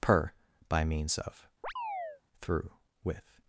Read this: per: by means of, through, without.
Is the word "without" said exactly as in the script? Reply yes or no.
no